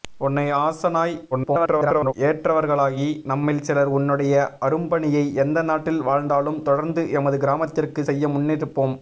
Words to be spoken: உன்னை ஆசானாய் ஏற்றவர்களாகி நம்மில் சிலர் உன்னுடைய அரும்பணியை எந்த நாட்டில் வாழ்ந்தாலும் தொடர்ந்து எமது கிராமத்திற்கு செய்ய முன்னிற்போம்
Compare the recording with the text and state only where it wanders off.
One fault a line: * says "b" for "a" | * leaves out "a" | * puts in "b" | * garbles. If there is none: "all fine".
* garbles